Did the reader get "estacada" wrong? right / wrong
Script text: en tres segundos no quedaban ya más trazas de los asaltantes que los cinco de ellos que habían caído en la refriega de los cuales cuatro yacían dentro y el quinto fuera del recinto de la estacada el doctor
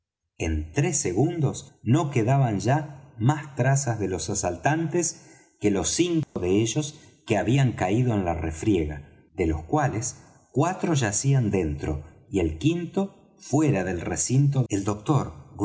wrong